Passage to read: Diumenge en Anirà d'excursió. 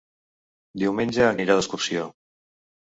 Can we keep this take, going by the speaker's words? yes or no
yes